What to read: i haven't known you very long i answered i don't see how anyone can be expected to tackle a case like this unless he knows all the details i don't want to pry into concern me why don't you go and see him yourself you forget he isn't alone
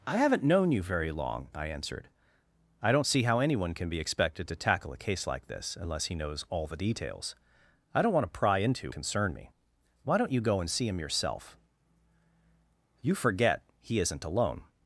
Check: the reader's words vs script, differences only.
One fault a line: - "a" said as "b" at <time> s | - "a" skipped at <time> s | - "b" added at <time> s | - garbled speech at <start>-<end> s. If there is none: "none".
none